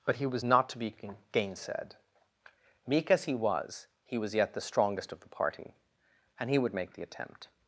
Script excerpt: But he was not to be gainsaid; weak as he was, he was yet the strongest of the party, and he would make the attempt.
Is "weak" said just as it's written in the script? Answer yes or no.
no